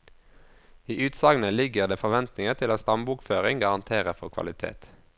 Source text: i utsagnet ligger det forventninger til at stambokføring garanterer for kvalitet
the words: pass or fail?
pass